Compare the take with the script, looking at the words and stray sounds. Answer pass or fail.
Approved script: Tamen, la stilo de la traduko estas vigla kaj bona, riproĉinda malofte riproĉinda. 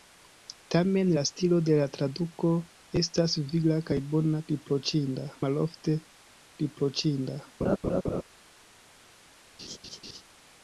fail